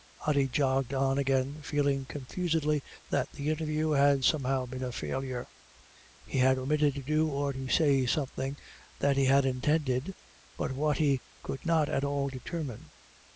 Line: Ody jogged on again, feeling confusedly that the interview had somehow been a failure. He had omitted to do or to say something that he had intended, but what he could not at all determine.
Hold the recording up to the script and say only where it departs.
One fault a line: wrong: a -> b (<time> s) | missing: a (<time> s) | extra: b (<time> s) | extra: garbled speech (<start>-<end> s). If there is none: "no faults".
no faults